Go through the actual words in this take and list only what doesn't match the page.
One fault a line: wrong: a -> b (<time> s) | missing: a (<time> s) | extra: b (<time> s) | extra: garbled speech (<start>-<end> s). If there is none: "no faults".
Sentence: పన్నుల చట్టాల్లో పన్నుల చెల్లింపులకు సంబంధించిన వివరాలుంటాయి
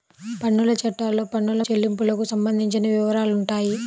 no faults